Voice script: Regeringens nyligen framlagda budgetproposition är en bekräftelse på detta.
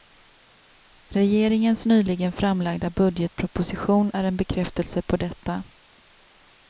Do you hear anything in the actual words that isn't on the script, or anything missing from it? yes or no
no